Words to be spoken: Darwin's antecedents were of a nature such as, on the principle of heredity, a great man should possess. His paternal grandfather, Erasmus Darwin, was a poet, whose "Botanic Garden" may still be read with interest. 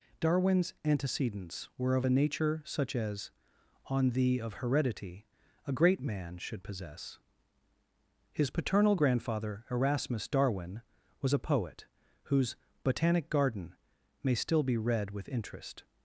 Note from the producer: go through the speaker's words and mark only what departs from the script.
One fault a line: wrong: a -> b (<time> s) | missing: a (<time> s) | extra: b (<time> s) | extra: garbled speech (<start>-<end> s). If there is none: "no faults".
missing: principle (4.4 s)